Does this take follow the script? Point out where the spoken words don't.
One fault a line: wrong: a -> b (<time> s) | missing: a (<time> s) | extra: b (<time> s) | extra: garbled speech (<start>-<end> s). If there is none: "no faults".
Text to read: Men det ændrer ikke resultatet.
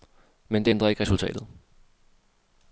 no faults